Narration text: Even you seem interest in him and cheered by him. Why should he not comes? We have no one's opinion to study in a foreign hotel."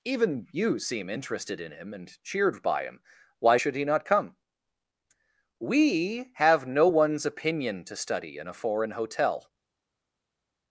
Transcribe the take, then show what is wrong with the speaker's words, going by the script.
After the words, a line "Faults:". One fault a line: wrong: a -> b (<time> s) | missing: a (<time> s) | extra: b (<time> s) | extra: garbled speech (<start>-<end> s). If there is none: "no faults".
Even you seem interested in him and cheered by him. Why should he not come? We have no one's opinion to study in a foreign hotel."
Faults:
wrong: interest -> interested (1.1 s)
wrong: comes -> come (4.0 s)